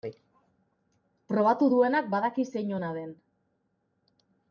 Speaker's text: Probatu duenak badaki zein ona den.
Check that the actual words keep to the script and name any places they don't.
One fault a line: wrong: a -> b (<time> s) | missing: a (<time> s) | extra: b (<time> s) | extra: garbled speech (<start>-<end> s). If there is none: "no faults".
no faults